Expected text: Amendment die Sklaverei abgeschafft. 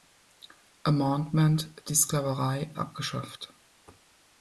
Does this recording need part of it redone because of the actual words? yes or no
no